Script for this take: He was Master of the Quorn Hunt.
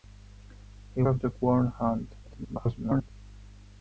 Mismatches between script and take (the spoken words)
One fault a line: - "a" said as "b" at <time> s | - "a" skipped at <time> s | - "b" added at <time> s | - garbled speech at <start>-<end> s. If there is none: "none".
- "was Master" skipped at 1.0 s
- garbled speech at 2.2-3.1 s